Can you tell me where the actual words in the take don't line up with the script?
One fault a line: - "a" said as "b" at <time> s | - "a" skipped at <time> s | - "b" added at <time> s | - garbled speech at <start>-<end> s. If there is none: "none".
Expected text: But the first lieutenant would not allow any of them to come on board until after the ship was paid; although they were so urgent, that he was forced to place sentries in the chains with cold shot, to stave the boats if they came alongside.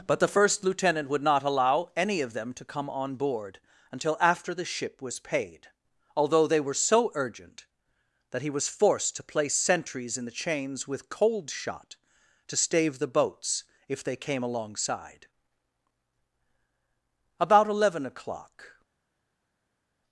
- "About eleven o'clock" added at 17.4 s